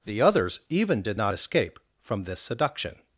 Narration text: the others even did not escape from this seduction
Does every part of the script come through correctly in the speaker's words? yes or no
yes